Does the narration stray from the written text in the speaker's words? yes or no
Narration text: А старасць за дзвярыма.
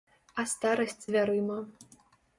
yes